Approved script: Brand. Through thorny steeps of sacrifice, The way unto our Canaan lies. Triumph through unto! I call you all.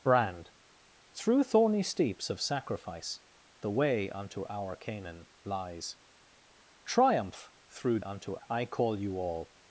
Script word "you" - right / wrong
right